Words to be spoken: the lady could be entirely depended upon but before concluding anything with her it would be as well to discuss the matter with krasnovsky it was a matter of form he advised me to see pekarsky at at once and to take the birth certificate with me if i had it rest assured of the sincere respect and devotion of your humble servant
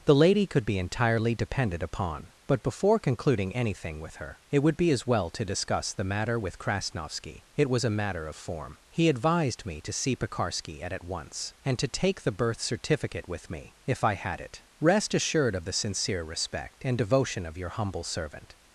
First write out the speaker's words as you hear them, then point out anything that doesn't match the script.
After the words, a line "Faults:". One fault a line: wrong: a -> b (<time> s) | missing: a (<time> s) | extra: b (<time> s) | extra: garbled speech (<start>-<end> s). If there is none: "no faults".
the lady could be entirely depended upon but before concluding anything with her it would be as well to discuss the matter with krasnovsky it was a matter of form he advised me to see pekarsky at at once and to take the birth certificate with me if i had it rest assured of the sincere respect and devotion of your humble servant
Faults:
no faults